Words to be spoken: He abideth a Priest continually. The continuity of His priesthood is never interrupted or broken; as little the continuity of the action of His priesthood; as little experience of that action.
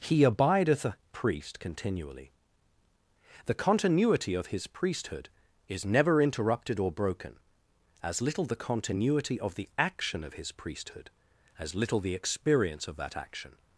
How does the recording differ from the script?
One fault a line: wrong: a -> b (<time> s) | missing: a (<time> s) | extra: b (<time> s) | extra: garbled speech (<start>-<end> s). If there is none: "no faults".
extra: the (12.0 s)